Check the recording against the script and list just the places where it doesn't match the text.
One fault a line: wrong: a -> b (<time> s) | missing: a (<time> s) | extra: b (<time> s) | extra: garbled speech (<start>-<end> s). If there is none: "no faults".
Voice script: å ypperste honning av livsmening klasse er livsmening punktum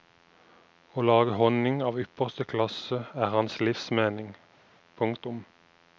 wrong: ypperste -> lage (1.1 s)
wrong: livsmening -> ypperste (2.0 s)
extra: hans (3.4 s)